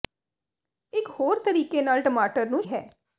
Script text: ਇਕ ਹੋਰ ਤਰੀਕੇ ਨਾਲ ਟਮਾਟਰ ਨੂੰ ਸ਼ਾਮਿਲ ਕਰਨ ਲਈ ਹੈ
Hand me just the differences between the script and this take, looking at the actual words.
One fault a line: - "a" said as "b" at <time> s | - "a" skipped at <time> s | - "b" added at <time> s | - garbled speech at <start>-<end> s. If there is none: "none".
- "ਸ਼ਾਮਿਲ ਕਰਨ ਲਈ" skipped at 2.6 s